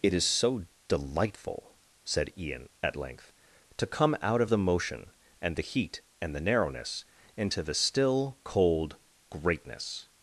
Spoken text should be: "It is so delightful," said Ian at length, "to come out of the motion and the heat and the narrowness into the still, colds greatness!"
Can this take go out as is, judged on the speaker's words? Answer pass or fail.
fail